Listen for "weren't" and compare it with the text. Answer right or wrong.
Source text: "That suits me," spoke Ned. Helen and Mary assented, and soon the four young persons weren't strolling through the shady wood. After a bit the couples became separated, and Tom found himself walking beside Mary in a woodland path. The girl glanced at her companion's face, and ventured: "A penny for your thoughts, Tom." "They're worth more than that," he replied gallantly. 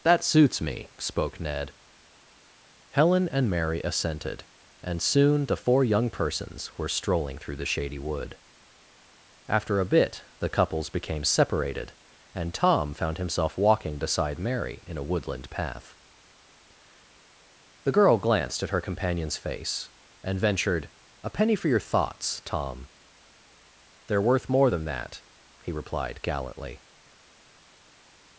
wrong